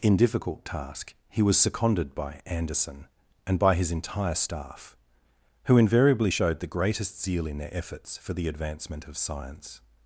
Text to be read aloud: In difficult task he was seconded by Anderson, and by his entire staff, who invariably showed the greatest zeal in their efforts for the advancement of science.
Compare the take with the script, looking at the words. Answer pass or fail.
pass